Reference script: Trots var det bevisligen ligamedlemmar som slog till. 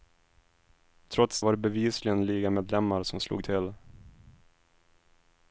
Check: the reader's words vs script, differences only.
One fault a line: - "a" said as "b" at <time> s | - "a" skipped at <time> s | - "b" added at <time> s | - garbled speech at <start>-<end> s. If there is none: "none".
none